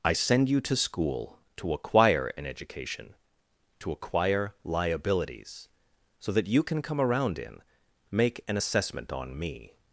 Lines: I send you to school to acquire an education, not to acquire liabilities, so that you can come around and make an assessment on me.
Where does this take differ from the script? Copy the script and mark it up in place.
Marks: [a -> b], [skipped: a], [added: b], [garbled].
I send you to school to acquire an education, [skipped: not] to acquire liabilities, so that you can come around [and -> in] make an assessment on me.